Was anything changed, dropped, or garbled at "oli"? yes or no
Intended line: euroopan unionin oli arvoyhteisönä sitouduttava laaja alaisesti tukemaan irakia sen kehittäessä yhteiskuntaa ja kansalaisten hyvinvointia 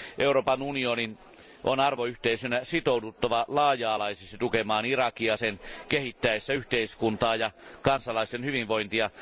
yes